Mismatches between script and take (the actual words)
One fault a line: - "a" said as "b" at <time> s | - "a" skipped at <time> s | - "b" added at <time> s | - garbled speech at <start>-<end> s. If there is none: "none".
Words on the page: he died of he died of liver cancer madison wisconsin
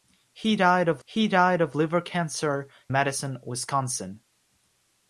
none